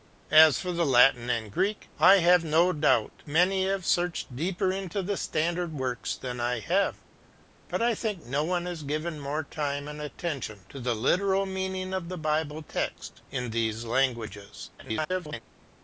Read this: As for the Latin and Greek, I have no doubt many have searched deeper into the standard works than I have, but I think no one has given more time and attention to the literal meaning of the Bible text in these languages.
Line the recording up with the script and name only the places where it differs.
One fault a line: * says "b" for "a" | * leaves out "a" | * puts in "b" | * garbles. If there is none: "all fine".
* garbles